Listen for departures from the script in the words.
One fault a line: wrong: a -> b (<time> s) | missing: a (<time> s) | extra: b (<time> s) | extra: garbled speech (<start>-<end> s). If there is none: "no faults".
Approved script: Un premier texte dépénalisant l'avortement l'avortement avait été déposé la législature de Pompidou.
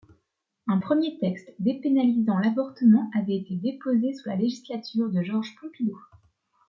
missing: l'avortement (3.1 s)
extra: sous (4.1 s)
extra: Georges (5.2 s)